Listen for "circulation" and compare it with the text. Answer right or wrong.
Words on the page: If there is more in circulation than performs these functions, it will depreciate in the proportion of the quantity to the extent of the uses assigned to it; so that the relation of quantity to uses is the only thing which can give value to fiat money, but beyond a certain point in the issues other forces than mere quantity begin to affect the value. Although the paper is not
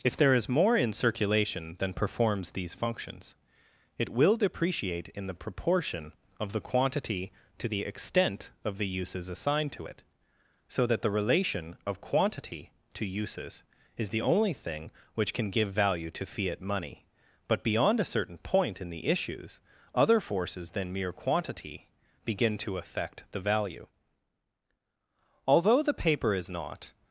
right